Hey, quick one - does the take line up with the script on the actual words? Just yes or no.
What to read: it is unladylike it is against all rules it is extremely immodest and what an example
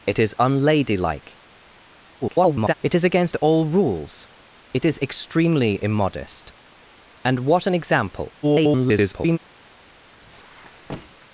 no